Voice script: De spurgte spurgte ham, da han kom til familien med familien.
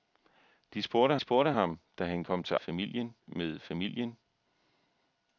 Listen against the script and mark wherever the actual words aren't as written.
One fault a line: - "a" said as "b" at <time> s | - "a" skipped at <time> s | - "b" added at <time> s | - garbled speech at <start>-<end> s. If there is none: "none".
none